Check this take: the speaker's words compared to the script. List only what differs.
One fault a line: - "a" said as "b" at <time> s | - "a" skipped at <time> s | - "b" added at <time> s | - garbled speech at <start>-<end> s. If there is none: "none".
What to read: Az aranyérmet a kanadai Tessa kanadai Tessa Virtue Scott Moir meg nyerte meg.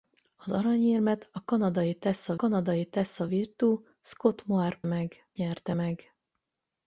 none